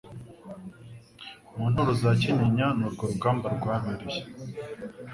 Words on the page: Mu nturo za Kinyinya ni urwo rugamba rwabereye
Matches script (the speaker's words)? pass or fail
pass